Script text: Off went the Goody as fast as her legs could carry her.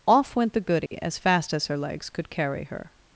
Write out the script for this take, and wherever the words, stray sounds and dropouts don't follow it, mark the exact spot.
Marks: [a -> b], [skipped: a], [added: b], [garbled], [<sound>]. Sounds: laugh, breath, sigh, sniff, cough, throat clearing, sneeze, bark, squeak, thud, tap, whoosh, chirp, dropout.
Off went the Goody [dropout] as fast as her legs could carry her.